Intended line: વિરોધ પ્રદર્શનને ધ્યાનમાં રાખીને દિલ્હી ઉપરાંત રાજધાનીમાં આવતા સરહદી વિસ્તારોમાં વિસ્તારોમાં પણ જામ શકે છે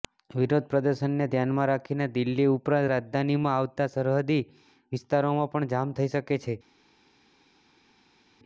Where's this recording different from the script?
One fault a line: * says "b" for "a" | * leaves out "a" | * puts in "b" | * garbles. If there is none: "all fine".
* leaves out "વિસ્તારોમાં"
* puts in "થઈ"